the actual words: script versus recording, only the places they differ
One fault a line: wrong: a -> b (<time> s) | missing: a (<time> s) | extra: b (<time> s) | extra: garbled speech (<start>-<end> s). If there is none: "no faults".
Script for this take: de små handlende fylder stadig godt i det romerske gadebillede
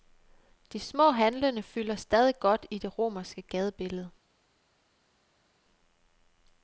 no faults